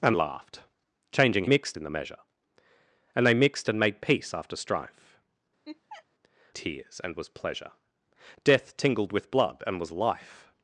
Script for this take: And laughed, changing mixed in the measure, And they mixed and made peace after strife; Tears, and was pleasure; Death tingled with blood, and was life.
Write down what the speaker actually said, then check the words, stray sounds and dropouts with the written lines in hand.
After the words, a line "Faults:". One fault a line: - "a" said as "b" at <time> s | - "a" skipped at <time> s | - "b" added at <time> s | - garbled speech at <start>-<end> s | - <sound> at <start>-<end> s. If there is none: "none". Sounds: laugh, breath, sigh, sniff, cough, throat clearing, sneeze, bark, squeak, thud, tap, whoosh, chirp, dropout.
And laughed, changing mixed in the measure, And they mixed and made peace after strife; Tears, and was pleasure; Death tingled with blood, and was life.
Faults:
- laugh at 5.7-6.1 s